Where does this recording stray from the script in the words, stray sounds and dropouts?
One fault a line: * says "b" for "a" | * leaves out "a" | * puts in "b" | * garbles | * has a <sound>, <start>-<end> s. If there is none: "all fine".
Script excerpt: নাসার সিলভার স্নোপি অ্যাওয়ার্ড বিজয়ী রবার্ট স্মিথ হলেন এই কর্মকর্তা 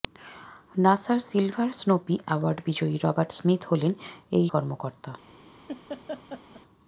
* has a laugh, 5.7-6.6 s